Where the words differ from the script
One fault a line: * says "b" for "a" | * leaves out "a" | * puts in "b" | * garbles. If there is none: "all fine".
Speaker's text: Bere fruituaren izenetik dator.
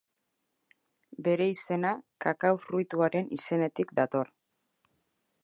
* puts in "izena Kakao"